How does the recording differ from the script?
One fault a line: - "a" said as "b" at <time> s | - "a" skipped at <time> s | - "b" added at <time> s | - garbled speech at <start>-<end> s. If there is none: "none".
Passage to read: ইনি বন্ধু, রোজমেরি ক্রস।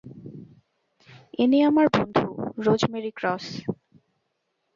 - "আমার" added at 1.6 s